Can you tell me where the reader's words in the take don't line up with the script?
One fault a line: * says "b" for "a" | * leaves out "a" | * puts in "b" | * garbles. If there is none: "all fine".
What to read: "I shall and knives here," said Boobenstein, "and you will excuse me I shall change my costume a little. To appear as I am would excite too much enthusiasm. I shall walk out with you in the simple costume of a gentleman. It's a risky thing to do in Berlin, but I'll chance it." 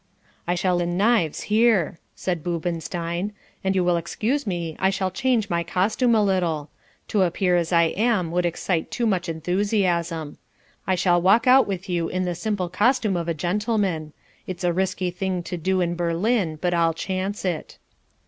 all fine